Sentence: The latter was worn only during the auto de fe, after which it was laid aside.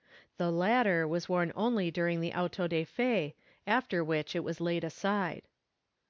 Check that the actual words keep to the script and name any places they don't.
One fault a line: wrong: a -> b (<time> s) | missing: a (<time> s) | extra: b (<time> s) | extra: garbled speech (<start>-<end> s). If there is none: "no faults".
no faults